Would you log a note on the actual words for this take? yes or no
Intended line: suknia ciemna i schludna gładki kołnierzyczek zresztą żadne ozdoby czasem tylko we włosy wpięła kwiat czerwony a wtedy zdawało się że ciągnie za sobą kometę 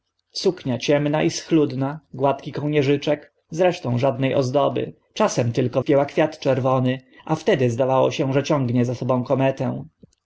yes